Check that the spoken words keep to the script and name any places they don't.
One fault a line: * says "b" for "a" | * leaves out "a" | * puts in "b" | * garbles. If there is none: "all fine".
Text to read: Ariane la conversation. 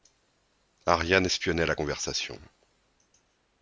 * puts in "espionnait"